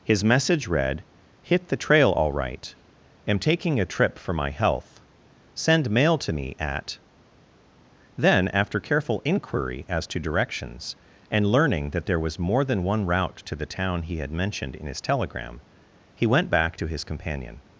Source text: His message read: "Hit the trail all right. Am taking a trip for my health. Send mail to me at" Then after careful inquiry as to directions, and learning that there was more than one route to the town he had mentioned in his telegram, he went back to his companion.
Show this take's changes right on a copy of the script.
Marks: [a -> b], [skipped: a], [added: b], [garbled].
His message read: "Hit the trail all right. Am taking a trip for my health. Send mail to me at" Then after careful inquiry as to directions, and learning that there was more than one route to the town he had mentioned in his telegram, he went back to his companion.